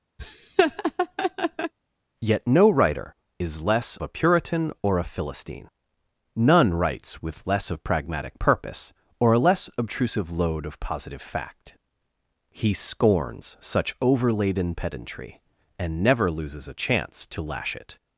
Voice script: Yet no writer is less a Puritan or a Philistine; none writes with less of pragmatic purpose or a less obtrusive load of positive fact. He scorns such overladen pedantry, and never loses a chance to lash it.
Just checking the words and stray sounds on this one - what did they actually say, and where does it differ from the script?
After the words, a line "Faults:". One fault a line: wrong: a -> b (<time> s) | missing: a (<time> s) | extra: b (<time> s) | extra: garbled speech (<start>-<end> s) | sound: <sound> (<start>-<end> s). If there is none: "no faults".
Yet no writer is less a Puritan or a Philistine; none writes with less of pragmatic purpose or a less obtrusive load of positive fact. He scorns such overladen pedantry, and never loses a chance to lash it.
Faults:
sound: laugh (0.2-1.7 s)